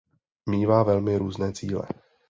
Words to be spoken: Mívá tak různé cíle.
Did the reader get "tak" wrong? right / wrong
wrong